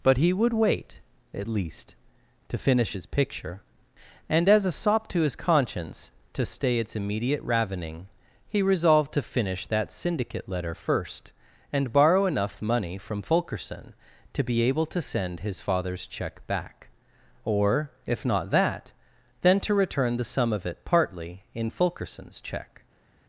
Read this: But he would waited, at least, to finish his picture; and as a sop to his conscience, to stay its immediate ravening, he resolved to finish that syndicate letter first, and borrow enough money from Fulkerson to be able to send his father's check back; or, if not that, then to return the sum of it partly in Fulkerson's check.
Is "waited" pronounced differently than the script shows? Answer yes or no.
yes